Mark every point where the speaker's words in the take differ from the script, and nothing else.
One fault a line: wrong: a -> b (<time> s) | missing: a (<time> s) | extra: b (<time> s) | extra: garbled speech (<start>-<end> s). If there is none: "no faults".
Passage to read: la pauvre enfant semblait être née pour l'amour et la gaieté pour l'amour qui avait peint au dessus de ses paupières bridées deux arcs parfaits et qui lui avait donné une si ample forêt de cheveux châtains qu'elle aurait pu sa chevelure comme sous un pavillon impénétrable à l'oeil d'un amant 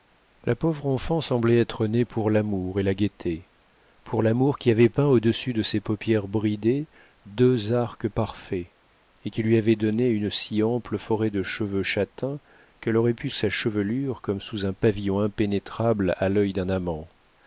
no faults